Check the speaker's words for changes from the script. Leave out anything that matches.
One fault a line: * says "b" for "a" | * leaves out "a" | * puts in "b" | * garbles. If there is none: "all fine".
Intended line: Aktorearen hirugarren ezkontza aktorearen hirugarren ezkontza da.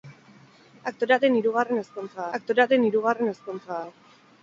all fine